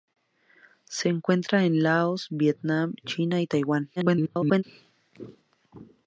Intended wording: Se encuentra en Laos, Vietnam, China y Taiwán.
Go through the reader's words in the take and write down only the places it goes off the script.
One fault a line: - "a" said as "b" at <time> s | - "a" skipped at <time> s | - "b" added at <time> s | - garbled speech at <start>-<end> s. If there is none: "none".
- garbled speech at 4.0-4.6 s